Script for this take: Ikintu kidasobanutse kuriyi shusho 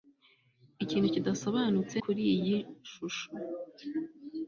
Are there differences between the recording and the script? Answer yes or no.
no